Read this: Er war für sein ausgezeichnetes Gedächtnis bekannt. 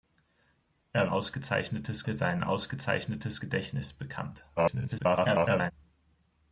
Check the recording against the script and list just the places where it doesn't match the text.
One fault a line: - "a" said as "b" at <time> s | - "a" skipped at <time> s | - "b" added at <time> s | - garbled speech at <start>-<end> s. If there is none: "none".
- "war" said as "ausgezeichnetes" at 1.1 s
- garbled speech at 4.6-5.7 s